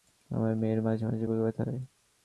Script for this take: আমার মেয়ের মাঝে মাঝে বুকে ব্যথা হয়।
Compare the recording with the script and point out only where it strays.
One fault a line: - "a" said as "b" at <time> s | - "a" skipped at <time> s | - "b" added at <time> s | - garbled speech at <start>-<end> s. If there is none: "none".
none